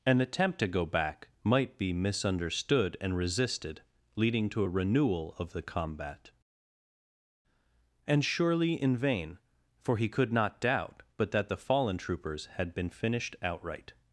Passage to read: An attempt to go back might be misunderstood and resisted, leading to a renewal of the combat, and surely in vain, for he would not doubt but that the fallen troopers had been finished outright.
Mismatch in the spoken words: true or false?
true